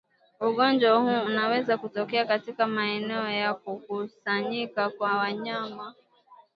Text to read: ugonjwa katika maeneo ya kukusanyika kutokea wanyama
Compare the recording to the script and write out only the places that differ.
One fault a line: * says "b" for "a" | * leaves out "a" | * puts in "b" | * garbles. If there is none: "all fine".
* puts in "huu unaweza kutokea"
* says "kwa" for "kutokea"